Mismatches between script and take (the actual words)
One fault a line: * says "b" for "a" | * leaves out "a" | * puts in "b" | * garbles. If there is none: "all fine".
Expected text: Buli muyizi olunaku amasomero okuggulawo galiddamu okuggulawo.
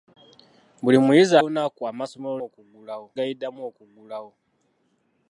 all fine